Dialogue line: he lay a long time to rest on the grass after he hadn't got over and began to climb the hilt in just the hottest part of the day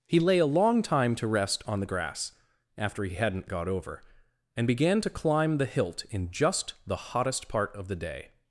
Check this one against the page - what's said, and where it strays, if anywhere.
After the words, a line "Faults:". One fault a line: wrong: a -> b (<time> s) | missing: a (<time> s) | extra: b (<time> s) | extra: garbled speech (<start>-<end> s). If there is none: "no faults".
he lay a long time to rest on the grass after he hadn't got over and began to climb the hilt in just the hottest part of the day
Faults:
no faults